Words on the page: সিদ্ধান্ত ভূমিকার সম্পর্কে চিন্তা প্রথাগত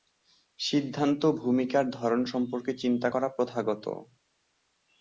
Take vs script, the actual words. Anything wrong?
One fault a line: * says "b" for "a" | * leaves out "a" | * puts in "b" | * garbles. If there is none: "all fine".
* puts in "ধরন"
* puts in "করা"